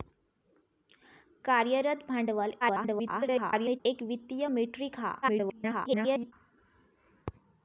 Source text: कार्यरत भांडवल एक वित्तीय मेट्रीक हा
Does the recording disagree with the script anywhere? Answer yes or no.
yes